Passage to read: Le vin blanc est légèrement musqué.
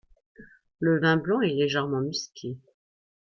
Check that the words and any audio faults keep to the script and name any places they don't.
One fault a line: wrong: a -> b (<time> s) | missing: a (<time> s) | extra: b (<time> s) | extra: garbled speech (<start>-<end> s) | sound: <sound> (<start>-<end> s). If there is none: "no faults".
no faults